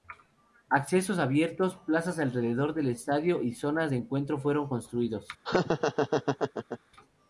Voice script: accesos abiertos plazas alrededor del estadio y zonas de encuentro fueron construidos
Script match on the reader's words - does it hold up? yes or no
yes